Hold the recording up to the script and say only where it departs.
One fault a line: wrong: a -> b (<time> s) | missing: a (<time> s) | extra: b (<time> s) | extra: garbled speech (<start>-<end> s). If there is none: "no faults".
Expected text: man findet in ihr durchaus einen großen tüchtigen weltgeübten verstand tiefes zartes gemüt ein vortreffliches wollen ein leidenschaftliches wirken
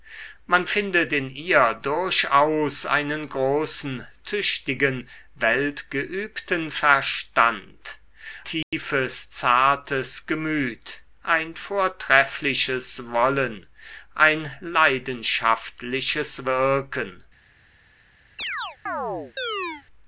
no faults